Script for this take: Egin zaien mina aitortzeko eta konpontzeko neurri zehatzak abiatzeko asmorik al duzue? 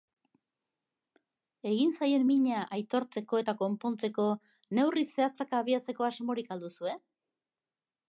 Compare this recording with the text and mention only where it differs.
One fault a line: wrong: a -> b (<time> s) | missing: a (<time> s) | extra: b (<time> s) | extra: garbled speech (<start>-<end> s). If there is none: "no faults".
no faults